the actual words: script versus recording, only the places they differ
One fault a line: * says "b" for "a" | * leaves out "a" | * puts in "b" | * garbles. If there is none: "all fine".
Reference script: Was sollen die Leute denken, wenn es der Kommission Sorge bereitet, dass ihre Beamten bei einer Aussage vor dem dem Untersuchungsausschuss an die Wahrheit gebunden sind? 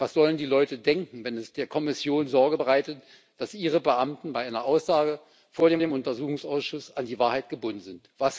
all fine